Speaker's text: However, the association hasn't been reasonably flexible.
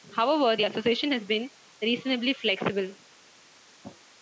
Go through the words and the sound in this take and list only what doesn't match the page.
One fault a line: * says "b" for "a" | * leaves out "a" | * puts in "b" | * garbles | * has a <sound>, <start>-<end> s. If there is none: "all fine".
* says "has" for "hasn't"